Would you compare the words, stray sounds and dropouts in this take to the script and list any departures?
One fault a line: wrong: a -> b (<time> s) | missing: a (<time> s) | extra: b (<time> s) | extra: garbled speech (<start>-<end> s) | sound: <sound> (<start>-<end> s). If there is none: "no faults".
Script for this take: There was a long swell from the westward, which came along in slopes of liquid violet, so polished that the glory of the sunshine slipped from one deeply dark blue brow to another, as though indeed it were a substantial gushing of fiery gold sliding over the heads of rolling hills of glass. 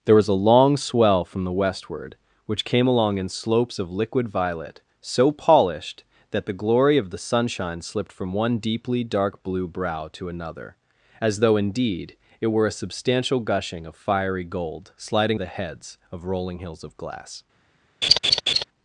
missing: over (15.4 s)
sound: laugh (18.0-18.6 s)